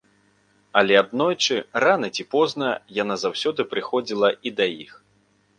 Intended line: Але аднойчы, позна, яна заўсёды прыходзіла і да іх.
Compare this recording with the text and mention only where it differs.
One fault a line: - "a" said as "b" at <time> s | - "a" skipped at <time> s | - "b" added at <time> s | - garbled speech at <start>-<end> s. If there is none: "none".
- "рана ці" added at 1.8 s